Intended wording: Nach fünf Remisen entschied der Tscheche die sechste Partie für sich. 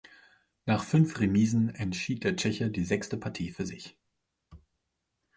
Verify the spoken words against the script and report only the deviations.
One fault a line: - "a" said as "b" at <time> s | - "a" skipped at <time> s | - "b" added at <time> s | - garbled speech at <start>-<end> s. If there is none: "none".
none